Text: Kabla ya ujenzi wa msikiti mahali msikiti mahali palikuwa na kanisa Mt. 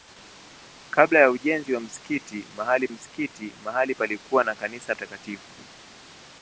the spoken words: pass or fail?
pass